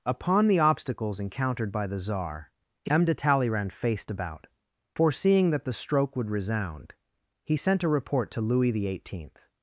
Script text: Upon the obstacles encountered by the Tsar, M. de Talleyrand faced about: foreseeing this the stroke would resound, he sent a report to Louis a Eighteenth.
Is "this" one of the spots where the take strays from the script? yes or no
yes